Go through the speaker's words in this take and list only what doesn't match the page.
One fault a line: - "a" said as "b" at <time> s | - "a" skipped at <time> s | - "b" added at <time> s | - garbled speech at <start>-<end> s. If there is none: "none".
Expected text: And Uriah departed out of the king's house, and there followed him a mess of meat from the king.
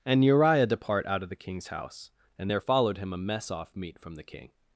- "departed" said as "depart" at 0.7 s
- "of" said as "off" at 3.5 s